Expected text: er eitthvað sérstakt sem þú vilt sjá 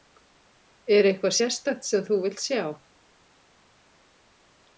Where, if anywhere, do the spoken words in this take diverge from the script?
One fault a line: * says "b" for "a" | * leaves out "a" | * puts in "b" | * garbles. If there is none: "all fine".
all fine